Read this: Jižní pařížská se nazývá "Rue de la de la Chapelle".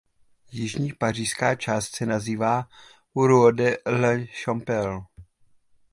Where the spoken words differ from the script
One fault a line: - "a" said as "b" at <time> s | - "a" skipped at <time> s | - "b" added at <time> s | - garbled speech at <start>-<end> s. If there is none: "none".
- "část" added at 1.6 s
- "de la" skipped at 4.2 s